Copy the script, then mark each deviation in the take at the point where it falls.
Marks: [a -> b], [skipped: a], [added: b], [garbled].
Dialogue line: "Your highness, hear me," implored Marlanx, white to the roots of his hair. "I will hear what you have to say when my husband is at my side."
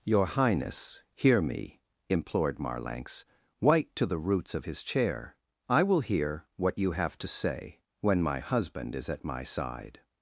"Your highness, hear me," implored Marlanx, white to the roots of his [hair. -> chair] "I will hear what you have to say when my husband is at my side."